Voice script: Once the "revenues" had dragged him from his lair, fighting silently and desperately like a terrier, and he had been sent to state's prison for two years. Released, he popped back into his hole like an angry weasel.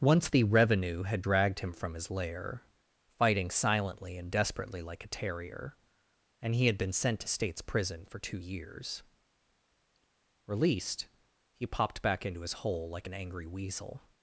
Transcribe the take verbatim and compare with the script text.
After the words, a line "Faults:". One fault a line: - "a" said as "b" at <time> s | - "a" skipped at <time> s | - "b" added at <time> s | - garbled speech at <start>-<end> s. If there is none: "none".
Once the "revenue" had dragged him from his lair, fighting silently and desperately like a terrier, and he had been sent to state's prison for two years. Released, he popped back into his hole like an angry weasel.
Faults:
- "revenues" said as "revenue" at 0.4 s